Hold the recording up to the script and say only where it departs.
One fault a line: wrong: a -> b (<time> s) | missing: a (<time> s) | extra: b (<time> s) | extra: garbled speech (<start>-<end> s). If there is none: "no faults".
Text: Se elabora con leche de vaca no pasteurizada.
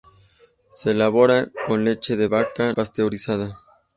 missing: no (2.7 s)